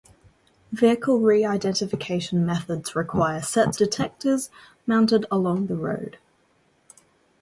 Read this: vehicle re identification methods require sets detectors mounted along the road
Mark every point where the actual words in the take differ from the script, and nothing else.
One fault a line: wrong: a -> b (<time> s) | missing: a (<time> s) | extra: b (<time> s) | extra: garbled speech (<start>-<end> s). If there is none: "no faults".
no faults